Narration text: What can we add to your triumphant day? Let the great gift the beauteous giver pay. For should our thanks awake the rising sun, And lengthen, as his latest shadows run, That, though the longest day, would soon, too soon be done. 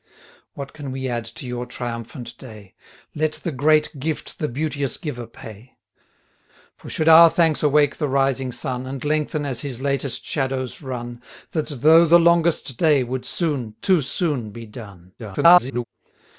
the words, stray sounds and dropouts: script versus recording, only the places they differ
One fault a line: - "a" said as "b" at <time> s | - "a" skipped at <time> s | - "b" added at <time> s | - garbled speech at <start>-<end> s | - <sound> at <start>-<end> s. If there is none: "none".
- garbled speech at 15.2-15.8 s